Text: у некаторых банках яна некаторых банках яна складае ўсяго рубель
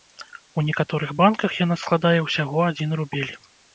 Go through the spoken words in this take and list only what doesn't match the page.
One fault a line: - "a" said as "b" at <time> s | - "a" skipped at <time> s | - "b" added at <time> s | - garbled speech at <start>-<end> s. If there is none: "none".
- "некаторых банках яна" skipped at 1.8 s
- "адзін" added at 2.7 s